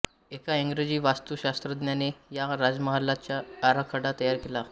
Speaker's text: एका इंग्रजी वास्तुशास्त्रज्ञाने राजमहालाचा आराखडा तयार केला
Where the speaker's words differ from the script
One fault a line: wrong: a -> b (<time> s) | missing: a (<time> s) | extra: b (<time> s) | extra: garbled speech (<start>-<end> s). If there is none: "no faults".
extra: या (2.3 s)